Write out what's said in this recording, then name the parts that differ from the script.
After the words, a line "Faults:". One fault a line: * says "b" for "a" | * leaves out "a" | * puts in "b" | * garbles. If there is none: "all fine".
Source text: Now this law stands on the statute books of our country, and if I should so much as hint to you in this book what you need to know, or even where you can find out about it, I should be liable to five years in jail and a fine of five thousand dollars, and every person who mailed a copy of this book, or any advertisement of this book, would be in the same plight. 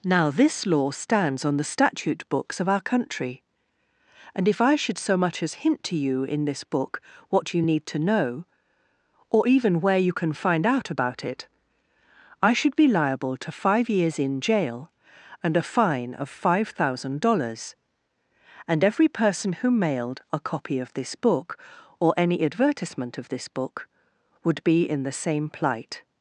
Now this law stands on the statute books of our country, and if I should so much as hint to you in this book what you need to know, or even where you can find out about it, I should be liable to five years in jail and a fine of five thousand dollars, and every person who mailed a copy of this book, or any advertisement of this book, would be in the same plight.
Faults:
all fine